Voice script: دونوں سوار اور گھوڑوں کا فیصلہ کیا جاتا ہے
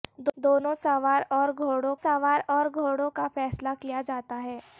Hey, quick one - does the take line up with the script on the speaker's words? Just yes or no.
no